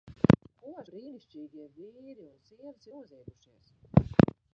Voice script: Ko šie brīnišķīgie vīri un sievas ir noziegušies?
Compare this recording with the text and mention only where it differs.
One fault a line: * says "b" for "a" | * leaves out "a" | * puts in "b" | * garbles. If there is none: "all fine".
* leaves out "šie"
* leaves out "ir"